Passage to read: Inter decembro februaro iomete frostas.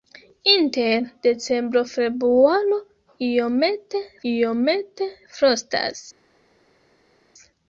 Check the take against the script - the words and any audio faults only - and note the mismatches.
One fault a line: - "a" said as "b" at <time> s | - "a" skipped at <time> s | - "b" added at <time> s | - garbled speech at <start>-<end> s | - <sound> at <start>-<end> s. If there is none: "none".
- "iomete" added at 4.3 s